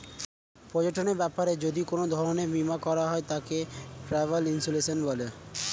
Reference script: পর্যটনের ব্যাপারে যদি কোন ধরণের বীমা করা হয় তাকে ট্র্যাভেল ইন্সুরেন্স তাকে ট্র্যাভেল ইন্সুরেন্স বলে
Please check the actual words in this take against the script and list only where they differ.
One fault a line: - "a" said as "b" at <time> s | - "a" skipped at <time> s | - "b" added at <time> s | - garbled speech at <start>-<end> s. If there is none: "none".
- "তাকে ট্র্যাভেল ইন্সুরেন্স" skipped at 5.0 s